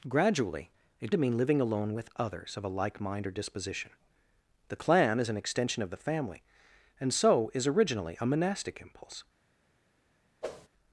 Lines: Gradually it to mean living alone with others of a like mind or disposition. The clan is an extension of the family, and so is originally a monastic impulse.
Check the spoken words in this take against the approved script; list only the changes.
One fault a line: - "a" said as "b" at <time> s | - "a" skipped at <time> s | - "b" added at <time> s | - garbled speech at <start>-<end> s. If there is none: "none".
none